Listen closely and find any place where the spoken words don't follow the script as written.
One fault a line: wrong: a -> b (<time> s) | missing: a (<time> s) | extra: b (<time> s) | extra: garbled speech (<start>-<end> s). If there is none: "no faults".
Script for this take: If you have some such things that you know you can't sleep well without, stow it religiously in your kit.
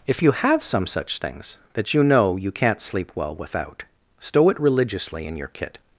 no faults